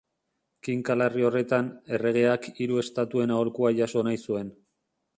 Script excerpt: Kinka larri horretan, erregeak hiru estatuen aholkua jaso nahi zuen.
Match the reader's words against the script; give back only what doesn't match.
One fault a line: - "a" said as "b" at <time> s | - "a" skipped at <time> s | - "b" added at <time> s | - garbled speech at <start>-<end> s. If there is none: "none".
none